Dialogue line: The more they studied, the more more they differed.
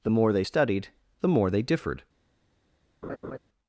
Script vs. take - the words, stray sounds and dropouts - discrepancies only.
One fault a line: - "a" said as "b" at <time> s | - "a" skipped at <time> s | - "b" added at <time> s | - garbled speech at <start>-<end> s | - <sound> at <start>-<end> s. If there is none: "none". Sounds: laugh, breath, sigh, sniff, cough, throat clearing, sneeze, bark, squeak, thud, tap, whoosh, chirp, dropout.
- "more" skipped at 1.5 s
- laugh at 3.0-3.4 s